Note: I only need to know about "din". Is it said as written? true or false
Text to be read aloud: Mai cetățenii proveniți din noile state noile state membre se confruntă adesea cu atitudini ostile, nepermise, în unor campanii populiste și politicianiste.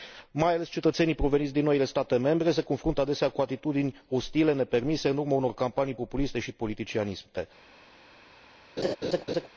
true